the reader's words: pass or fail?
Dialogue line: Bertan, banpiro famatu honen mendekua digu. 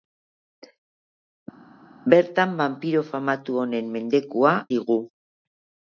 pass